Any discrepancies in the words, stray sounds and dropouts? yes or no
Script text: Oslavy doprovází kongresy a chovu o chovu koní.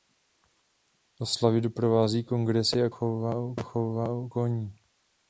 no